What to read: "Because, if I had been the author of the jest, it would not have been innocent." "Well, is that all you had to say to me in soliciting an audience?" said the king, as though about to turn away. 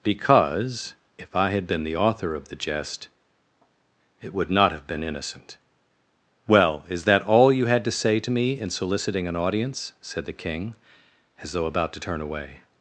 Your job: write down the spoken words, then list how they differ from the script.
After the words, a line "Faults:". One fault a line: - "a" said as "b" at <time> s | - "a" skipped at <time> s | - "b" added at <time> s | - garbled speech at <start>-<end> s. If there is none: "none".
"Because, if I had been the author of the jest, it would not have been innocent." "Well, is that all you had to say to me in soliciting an audience?" said the king, as though about to turn away.
Faults:
none